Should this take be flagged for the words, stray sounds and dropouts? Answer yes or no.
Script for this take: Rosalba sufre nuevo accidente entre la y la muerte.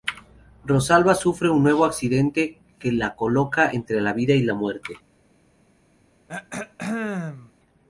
yes